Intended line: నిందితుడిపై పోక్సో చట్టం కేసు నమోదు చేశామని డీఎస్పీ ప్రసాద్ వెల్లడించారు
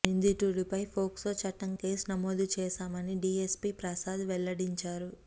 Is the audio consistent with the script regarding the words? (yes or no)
yes